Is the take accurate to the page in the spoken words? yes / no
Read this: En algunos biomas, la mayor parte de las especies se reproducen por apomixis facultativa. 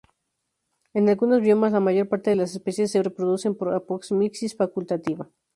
yes